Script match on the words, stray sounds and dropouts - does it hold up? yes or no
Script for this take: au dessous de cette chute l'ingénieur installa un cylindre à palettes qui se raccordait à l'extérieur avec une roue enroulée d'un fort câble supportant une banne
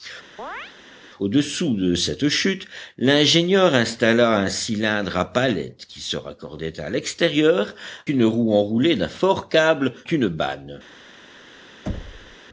no